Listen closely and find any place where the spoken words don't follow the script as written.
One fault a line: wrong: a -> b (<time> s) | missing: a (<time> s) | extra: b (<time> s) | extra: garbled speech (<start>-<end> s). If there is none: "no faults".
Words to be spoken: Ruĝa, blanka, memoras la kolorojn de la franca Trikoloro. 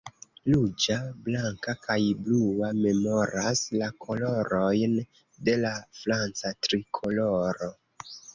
extra: kaj blua (1.8 s)